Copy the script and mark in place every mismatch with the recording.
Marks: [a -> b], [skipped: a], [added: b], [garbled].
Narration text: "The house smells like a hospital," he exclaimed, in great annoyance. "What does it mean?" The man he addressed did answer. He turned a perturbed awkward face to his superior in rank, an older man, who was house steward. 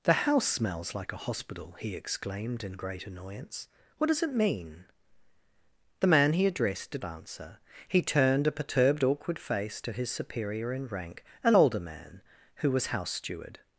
"The house smells like a hospital," he exclaimed, in great annoyance. "What does it mean?" The man he addressed did answer. He turned a perturbed awkward face to his superior in rank, an older man, who was house steward.